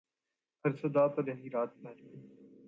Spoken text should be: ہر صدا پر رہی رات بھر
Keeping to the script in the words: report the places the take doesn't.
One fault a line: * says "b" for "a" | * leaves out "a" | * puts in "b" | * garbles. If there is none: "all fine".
all fine